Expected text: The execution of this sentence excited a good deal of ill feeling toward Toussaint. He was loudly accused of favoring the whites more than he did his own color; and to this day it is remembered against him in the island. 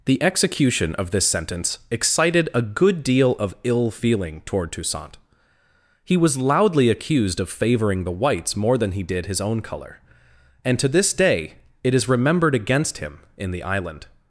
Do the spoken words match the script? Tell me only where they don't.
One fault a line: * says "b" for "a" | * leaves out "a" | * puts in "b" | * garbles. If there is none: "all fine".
all fine